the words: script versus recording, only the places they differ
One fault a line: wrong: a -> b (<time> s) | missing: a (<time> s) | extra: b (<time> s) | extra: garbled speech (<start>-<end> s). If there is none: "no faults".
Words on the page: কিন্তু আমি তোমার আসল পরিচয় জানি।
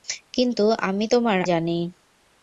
missing: আসল পরিচয় (1.4 s)